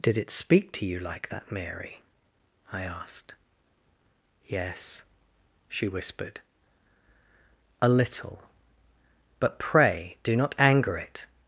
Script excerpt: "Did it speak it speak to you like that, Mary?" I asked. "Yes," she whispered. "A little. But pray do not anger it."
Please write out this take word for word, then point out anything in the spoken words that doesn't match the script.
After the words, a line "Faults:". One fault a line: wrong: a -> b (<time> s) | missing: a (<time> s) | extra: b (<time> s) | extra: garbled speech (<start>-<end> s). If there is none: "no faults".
"Did it speak to you like that, Mary?" I asked. "Yes," she whispered. "A little. But pray do not anger it."
Faults:
missing: it speak (0.7 s)